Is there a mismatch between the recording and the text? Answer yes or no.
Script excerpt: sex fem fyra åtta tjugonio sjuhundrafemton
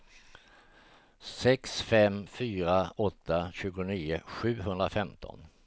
no